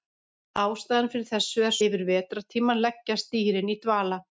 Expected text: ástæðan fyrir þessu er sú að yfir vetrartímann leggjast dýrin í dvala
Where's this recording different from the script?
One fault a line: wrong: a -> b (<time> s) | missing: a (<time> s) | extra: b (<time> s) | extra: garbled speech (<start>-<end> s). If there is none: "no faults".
missing: sú að (1.8 s)